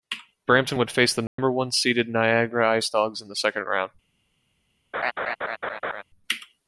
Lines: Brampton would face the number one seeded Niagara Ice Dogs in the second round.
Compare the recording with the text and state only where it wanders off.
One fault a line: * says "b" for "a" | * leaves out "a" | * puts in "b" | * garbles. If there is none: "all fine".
all fine